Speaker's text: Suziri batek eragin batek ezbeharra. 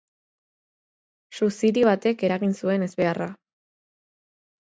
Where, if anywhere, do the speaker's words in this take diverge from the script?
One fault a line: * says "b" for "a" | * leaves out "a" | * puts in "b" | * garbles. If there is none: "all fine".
* says "zuen" for "batek"